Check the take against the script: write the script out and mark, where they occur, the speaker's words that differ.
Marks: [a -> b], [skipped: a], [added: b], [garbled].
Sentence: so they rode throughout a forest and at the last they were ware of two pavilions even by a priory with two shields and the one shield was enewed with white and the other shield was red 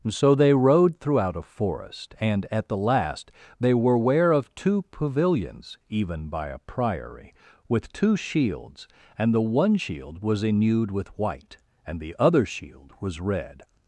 so they rode throughout a forest and at the last they were ware of two pavilions even by a priory with two shields and the one shield was enewed with white and the other shield was red